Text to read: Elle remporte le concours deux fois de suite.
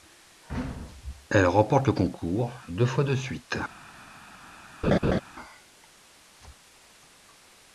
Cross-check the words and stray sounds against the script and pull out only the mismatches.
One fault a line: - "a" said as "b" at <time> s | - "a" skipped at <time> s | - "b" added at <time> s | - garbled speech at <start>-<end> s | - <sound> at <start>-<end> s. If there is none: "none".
- laugh at 4.8-5.2 s